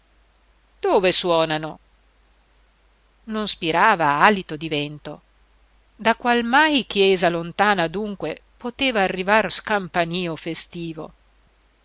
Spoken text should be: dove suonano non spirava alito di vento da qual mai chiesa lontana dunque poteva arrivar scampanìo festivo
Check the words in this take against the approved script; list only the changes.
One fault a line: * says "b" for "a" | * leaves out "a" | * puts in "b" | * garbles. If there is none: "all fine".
all fine